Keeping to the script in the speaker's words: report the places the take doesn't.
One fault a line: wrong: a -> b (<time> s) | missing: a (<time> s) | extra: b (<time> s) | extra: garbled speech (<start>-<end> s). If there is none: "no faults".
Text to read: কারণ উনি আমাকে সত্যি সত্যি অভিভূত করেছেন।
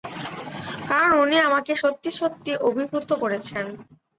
no faults